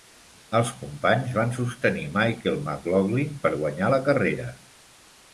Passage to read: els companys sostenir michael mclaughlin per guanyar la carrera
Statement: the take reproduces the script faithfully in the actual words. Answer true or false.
false